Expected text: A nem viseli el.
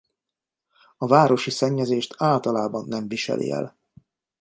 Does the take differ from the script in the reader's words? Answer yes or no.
yes